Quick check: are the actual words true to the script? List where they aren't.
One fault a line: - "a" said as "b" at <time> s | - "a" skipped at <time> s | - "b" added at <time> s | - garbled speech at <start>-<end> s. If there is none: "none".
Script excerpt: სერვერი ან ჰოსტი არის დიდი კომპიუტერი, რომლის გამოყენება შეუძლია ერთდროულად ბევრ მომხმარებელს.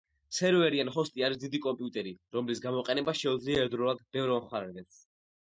none